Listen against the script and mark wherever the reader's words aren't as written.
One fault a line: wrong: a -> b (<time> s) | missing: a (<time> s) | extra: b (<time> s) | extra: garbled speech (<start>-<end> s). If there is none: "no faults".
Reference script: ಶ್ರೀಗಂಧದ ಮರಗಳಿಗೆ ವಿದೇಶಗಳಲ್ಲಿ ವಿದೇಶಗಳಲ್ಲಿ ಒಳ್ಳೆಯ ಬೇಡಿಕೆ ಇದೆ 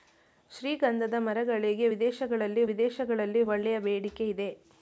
no faults